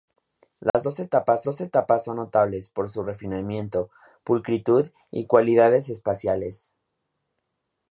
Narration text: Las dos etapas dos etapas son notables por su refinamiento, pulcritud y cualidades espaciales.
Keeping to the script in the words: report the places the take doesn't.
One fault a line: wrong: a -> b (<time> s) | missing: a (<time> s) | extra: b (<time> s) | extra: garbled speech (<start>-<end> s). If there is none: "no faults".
no faults